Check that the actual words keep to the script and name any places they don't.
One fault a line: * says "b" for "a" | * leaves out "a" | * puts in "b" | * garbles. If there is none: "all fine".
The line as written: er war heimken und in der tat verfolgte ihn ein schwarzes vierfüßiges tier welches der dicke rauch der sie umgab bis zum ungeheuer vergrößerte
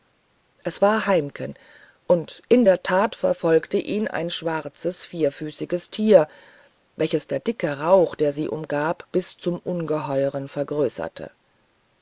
* says "es" for "er"